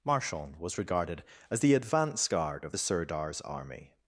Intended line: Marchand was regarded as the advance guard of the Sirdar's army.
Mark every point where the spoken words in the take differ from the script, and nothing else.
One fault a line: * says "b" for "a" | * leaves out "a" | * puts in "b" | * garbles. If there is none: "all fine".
all fine